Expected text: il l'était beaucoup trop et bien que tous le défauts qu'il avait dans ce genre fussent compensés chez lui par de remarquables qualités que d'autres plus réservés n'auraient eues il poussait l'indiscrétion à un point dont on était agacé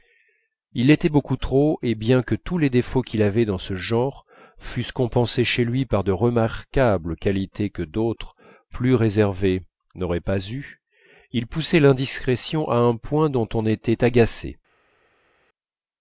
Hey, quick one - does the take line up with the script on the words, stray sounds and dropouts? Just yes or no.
no